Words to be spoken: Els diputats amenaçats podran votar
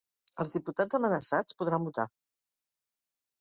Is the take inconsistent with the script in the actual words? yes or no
no